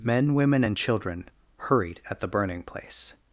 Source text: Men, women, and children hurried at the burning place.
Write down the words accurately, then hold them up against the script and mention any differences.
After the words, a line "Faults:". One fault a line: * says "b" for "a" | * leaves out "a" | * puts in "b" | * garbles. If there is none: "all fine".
Men, women, and children hurried at the burning place.
Faults:
all fine